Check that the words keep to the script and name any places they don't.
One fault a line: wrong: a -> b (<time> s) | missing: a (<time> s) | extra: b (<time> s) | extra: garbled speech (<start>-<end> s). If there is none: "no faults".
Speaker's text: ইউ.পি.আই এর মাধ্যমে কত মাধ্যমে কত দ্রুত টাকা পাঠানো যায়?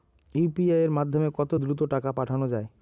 missing: মাধ্যমে কত (1.5 s)